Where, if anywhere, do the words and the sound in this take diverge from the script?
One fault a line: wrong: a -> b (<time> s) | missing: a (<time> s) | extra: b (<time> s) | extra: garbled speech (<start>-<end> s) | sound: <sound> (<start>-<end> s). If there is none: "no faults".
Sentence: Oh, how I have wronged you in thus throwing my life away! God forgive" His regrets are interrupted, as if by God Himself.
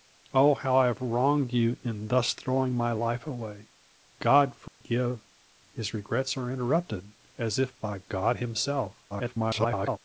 sound: dropout (4.7-4.8 s)
extra: garbled speech (9.1-10.0 s)